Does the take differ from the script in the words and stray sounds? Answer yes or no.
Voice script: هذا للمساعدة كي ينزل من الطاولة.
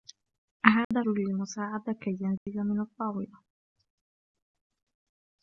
yes